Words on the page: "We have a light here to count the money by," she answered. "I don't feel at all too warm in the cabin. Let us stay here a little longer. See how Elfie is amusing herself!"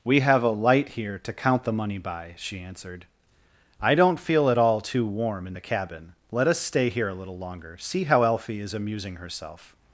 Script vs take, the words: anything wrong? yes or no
no